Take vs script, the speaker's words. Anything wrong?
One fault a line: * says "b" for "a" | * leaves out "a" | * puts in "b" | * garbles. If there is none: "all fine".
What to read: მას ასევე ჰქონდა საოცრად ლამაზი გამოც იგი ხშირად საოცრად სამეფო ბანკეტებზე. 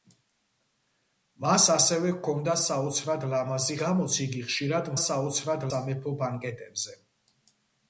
all fine